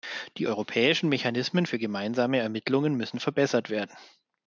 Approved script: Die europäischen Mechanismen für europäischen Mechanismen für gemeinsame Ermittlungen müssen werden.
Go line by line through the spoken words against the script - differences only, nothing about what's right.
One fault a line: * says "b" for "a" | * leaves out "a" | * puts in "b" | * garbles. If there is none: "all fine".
* leaves out "europäischen Mechanismen für"
* puts in "verbessert"